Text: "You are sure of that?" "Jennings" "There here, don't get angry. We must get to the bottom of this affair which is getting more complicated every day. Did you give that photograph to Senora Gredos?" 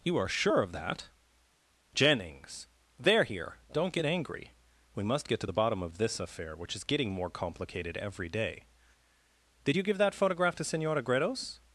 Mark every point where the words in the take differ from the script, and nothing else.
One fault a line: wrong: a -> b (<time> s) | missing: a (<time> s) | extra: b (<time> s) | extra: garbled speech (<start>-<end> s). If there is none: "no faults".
no faults